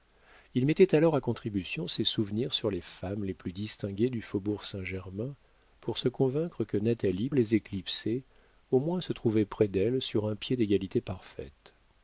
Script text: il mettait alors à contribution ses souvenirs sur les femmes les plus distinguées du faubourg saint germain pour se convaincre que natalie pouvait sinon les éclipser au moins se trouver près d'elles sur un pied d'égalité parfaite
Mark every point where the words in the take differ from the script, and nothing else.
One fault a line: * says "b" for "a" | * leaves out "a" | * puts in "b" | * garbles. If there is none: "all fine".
* leaves out "pouvait sinon"